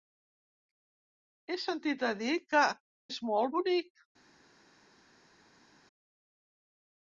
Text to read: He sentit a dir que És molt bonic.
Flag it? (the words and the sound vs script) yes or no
no